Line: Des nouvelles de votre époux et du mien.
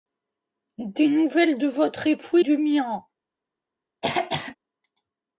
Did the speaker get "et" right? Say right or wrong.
wrong